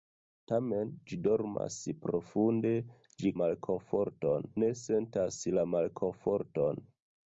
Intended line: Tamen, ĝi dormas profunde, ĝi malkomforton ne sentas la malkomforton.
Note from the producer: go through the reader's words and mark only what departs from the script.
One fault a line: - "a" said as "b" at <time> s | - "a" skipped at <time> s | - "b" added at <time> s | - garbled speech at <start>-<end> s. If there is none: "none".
none